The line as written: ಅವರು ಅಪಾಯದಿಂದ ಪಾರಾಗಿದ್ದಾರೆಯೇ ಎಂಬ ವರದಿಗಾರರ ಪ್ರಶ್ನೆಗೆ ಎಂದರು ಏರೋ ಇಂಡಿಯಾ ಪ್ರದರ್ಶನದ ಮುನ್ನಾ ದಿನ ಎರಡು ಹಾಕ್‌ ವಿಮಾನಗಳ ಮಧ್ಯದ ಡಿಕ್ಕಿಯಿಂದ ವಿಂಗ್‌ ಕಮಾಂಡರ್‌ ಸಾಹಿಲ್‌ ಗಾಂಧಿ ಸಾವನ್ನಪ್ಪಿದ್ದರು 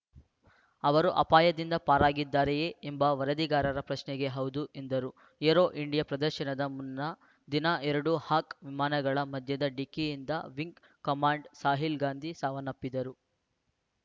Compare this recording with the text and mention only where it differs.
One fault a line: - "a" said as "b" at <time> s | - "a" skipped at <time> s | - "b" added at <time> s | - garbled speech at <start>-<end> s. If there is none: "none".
- "ಹೌದು" added at 4.4 s